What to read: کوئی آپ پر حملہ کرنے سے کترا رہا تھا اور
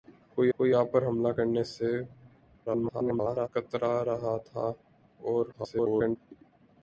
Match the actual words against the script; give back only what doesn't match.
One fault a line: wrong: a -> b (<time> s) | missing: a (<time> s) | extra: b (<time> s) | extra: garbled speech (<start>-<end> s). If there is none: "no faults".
extra: کوئی (0.5 s)
extra: garbled speech (2.7-3.5 s)
extra: garbled speech (5.5-6.2 s)